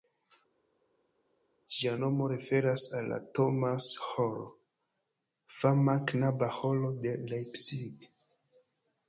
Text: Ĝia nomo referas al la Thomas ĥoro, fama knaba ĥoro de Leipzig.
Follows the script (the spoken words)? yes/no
yes